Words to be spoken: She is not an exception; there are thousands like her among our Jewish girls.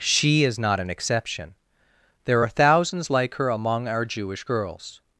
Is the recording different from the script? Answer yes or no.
no